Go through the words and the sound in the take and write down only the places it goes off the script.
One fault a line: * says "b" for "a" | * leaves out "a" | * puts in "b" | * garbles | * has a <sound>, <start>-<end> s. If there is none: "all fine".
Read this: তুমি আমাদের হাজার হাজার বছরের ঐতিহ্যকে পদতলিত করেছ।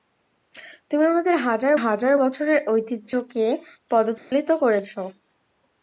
* has a dropout, 4.2-4.3 s